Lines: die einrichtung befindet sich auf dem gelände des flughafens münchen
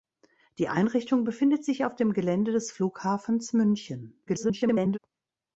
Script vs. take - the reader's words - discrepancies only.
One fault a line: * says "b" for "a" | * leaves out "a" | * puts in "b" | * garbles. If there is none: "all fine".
* garbles